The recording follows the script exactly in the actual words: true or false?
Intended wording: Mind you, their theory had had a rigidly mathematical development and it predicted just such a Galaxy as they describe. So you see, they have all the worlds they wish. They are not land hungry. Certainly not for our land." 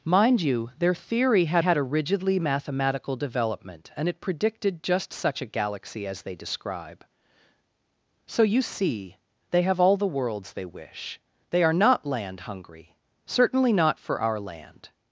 true